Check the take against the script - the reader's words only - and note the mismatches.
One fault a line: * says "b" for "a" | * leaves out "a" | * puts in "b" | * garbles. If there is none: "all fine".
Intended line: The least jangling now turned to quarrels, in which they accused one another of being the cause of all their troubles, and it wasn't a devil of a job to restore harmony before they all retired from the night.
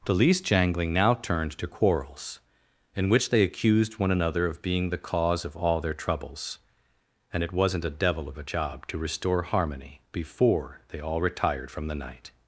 all fine